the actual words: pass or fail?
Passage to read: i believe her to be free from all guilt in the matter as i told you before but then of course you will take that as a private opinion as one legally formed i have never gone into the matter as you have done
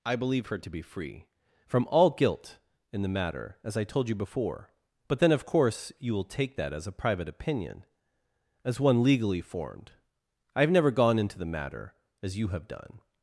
pass